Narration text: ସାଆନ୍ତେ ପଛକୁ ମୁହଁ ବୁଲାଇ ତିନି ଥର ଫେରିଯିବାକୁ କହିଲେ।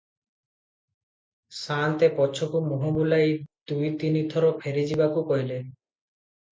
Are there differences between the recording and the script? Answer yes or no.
yes